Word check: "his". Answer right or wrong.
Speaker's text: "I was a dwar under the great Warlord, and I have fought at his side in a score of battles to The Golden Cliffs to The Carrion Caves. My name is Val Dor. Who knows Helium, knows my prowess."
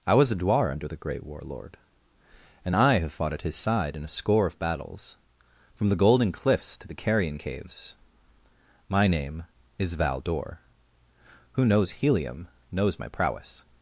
right